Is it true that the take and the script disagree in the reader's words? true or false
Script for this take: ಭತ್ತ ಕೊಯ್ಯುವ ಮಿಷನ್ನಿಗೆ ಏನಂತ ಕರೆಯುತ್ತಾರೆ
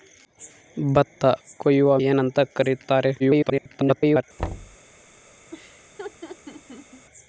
true